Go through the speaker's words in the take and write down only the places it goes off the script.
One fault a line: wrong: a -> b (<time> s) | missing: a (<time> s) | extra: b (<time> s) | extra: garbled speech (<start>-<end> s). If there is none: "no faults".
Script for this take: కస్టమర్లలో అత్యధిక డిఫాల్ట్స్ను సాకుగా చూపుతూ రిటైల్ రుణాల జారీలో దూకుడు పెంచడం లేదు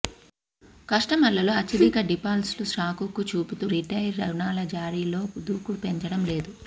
no faults